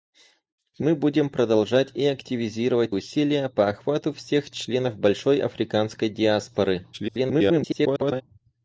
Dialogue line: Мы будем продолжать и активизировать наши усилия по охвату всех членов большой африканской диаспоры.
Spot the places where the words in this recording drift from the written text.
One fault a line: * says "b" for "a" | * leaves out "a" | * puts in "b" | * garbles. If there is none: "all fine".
* leaves out "наши"
* garbles